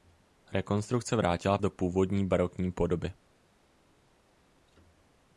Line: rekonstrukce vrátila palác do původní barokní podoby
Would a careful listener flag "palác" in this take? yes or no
yes